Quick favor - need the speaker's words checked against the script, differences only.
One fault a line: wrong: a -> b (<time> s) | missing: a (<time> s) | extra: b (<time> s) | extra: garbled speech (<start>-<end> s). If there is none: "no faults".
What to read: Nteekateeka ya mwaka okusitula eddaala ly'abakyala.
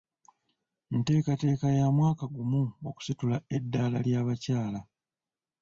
extra: gumu (2.4 s)